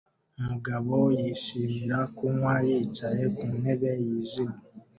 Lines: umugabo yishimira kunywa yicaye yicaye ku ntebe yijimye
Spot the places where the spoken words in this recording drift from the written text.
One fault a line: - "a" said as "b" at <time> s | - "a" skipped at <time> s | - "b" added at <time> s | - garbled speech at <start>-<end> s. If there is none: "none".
- "yicaye" skipped at 3.2 s